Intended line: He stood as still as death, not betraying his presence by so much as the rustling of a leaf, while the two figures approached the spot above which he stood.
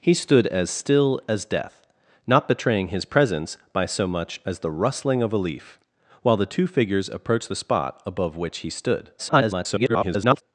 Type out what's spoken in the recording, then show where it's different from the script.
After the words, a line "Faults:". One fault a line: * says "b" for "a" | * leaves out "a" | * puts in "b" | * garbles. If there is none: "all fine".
He stood as still as death, not betraying his presence by so much as the rustling of a leaf, while the two figures approached the spot above which he stood. [garbled]
Faults:
* garbles